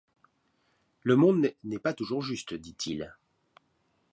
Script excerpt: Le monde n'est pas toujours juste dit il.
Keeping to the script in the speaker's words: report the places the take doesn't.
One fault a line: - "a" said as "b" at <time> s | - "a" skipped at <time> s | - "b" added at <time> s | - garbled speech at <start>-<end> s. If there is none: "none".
none